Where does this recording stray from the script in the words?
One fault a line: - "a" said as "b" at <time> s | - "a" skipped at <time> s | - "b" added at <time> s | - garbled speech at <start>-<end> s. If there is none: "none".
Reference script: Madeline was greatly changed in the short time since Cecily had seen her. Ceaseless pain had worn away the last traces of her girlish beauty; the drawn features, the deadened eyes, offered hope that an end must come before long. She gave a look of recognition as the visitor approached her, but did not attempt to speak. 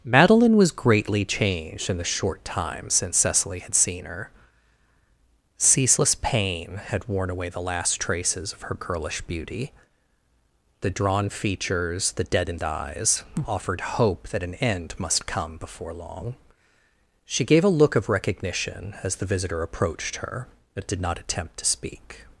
none